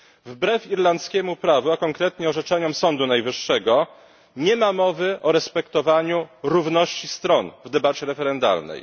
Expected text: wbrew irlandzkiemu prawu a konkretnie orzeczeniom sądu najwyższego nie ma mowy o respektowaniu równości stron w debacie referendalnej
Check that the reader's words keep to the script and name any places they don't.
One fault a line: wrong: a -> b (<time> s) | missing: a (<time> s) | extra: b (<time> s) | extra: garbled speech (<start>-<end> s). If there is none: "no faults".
no faults